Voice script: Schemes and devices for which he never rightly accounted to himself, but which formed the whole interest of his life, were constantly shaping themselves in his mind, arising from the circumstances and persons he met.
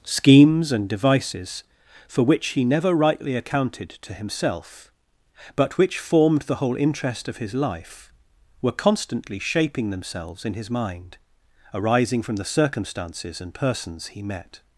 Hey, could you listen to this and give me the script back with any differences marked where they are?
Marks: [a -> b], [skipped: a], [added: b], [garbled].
Schemes and devices for which he never rightly accounted to himself, but which formed the whole interest of his life, were constantly shaping themselves in his mind, arising from the circumstances and persons he met.